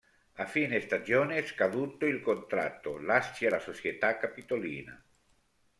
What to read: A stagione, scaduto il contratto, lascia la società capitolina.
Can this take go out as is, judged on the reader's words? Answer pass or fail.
fail